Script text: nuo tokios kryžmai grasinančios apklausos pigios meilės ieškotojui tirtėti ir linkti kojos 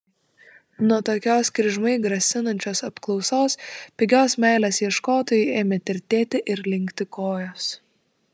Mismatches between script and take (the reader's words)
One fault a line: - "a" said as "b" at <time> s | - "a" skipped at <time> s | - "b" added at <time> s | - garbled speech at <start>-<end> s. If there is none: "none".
- "ėmė" added at 5.6 s